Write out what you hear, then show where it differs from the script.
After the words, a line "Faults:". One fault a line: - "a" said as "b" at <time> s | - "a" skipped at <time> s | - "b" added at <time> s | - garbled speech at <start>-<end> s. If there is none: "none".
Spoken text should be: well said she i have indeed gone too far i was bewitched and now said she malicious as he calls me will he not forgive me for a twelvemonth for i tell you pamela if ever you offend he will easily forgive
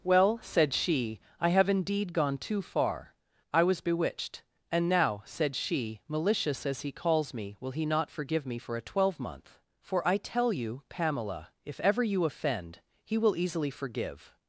well said she i have indeed gone too far i was bewitched and now said she malicious as he calls me will he not forgive me for a twelvemonth for i tell you pamela if ever you offend he will easily forgive
Faults:
none